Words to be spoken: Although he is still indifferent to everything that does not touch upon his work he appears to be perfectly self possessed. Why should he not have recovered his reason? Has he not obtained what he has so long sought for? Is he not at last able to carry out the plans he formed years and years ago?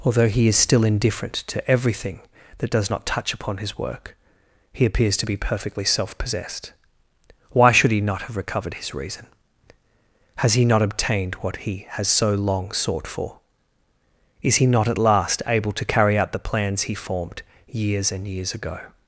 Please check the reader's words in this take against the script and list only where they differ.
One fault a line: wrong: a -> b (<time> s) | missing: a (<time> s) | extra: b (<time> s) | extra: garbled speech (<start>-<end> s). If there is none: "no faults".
no faults